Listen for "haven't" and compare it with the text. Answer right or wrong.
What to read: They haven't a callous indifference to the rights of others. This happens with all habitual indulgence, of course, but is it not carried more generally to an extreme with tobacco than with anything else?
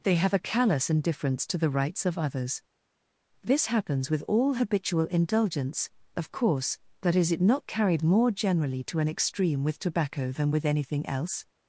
wrong